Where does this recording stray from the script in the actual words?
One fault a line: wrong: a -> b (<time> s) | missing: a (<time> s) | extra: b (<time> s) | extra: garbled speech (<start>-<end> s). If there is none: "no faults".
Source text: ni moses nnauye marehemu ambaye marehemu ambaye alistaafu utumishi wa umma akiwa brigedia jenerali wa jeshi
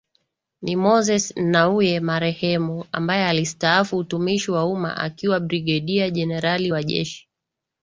missing: marehemu ambaye (3.2 s)